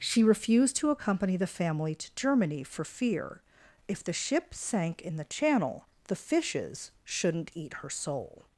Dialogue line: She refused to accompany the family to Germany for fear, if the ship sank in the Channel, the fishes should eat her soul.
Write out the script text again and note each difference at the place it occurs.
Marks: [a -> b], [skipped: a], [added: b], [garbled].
She refused to accompany the family to Germany for fear, if the ship sank in the Channel, the fishes [should -> shouldn't] eat her soul.